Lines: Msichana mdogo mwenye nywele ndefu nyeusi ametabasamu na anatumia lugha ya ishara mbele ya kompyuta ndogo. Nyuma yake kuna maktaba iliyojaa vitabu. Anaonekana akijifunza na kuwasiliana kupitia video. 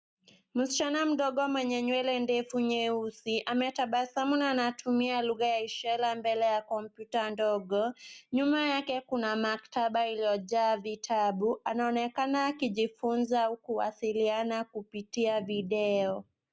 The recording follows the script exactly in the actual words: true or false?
false